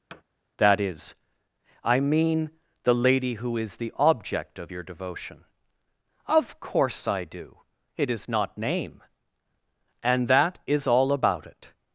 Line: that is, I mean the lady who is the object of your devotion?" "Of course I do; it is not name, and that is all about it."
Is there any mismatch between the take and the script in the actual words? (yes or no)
no